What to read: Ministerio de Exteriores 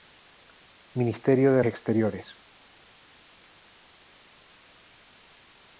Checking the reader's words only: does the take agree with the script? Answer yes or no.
yes